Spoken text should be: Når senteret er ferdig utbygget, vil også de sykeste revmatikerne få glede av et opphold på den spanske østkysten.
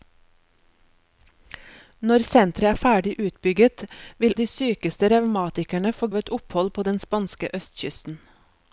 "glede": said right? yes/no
no